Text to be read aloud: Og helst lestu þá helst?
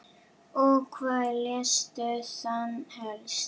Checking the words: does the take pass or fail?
fail